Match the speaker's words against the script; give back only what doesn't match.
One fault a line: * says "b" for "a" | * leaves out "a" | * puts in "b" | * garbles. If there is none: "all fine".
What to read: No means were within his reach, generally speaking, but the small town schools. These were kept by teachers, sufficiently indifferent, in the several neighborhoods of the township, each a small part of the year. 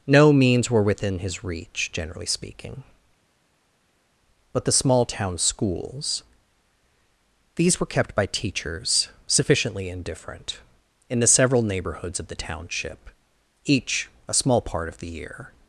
all fine